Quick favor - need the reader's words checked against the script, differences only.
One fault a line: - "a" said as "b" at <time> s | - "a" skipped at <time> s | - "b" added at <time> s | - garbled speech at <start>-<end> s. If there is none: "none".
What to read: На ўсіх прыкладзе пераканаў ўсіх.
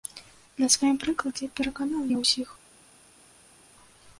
- "ўсіх" said as "сваім" at 0.8 s
- "я" added at 2.1 s